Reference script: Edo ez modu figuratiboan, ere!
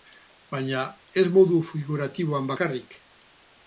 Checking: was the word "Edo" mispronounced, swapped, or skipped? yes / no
yes